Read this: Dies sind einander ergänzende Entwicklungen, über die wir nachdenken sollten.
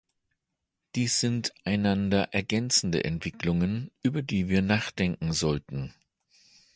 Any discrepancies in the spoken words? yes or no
no